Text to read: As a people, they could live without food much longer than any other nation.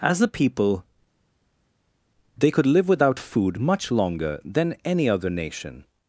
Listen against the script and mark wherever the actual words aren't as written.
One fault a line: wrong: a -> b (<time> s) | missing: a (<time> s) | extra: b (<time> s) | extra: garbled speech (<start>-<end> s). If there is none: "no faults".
no faults